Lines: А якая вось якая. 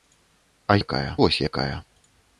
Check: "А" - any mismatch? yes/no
no